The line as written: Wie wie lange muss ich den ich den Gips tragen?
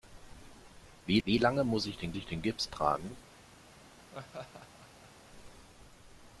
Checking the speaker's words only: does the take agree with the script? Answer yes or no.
yes